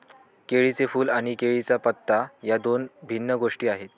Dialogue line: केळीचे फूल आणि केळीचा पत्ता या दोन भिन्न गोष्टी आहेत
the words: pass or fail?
pass